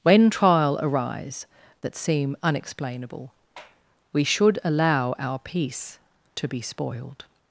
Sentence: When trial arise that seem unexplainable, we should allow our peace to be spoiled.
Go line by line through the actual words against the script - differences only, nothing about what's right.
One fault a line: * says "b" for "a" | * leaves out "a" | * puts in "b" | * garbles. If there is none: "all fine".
all fine